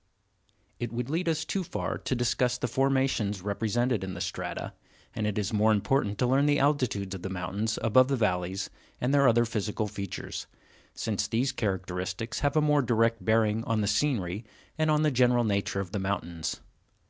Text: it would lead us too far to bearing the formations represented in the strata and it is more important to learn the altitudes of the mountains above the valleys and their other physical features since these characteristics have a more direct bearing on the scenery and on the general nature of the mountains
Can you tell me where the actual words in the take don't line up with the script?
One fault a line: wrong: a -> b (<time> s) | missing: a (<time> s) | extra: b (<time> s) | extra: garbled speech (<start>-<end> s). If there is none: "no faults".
wrong: bearing -> discuss (2.1 s)